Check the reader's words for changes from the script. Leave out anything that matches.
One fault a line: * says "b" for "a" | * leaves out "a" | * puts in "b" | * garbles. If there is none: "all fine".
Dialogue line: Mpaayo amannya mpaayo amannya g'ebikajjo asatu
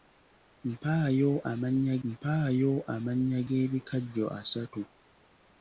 all fine